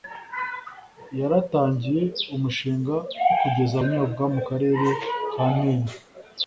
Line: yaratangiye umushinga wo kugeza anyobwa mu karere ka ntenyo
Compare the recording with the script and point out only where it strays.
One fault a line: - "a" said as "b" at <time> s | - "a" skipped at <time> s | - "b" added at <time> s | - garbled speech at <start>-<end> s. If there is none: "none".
none